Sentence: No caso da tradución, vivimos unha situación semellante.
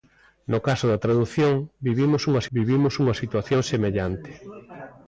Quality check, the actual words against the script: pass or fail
fail